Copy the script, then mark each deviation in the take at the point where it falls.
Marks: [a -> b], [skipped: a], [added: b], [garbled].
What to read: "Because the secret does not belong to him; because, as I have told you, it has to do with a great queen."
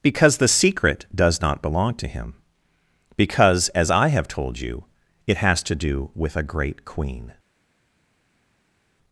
"Because the secret does not belong to him; because, as I have told you, it has to do with a great queen."